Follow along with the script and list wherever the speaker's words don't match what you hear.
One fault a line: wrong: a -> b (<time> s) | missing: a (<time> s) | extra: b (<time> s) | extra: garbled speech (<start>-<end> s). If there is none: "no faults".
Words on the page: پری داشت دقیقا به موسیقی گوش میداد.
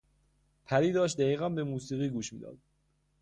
no faults